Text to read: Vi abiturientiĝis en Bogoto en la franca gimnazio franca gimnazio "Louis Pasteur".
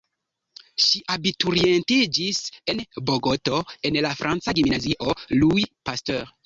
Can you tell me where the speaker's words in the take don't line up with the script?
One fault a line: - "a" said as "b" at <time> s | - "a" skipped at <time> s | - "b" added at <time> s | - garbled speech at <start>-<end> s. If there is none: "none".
- "Vi" said as "Ŝi" at 0.8 s
- "franca gimnazio" skipped at 5.2 s